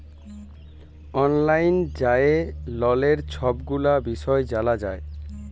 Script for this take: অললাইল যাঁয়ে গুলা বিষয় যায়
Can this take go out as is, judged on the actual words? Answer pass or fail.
fail